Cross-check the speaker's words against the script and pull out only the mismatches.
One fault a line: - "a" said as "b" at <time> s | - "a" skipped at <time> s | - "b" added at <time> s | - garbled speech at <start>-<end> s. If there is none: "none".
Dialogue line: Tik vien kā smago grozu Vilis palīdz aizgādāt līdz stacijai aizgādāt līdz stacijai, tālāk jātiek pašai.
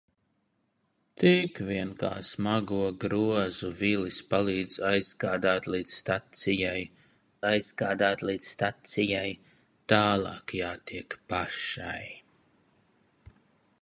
none